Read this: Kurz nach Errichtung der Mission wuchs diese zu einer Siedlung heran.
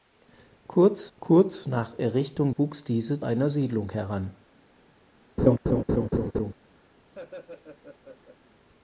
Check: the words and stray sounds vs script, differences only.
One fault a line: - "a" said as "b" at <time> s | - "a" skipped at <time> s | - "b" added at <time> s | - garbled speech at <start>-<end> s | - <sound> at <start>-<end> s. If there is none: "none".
- "kurz" added at 1.2 s
- "der Mission" skipped at 2.5 s
- "zu" skipped at 3.2 s
- laugh at 5.4-6.5 s
- laugh at 7.1-8.4 s